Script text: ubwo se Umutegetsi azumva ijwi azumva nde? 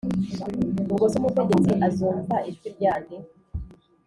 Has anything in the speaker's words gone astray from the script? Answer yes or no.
yes